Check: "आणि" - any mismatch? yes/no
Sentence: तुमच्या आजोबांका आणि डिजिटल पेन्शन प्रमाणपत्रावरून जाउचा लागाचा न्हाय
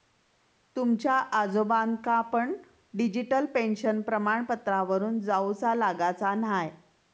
yes